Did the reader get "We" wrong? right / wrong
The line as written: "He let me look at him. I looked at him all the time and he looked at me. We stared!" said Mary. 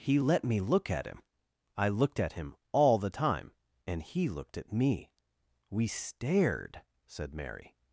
right